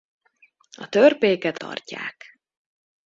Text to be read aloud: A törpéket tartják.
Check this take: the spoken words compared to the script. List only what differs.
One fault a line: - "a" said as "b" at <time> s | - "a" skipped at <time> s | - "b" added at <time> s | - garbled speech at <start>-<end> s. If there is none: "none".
none